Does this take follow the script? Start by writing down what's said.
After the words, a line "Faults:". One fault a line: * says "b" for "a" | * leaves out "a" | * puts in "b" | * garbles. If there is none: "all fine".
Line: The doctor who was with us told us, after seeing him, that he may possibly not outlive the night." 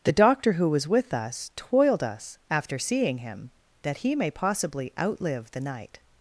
The doctor who was with us toiled us, after seeing him, that he may possibly outlive the night."
Faults:
* says "toiled" for "told"
* leaves out "not"